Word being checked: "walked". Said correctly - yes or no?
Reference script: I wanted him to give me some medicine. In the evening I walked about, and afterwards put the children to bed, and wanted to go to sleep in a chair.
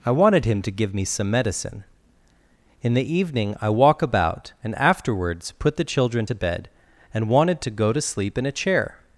no